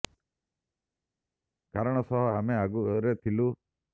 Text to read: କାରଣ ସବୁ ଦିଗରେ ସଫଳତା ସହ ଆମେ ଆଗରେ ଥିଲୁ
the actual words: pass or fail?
fail